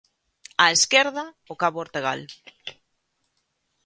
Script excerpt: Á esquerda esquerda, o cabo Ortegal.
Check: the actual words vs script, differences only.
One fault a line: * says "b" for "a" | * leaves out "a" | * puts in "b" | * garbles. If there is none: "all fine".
* leaves out "esquerda"